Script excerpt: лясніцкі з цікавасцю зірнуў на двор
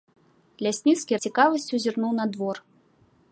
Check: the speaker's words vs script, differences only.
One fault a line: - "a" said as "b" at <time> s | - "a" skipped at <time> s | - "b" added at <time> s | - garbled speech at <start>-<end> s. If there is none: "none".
none